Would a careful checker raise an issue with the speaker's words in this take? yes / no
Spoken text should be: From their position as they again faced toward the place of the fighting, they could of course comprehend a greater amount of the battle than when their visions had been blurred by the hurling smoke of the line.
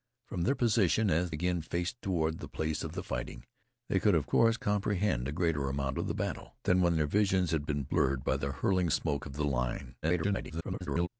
yes